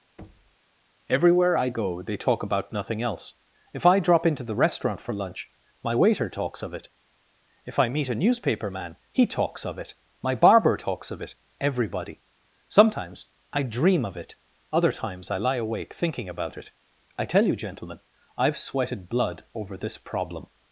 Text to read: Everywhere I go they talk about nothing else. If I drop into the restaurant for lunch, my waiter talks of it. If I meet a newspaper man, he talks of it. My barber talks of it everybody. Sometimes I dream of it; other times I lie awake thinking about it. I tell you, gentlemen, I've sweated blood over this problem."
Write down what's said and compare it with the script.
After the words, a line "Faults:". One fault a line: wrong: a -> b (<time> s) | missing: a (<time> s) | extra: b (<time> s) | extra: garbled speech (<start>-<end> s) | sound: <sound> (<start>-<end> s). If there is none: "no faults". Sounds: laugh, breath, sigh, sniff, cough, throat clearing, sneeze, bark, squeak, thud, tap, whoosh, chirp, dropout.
Everywhere I go they talk about nothing else. If I drop into the restaurant for lunch, my waiter talks of it. If I meet a newspaper man, he talks of it. My barber talks of it everybody. Sometimes I dream of it; other times I lie awake thinking about it. I tell you, gentlemen, I've sweated blood over this problem."
Faults:
sound: thud (0.2-0.6 s)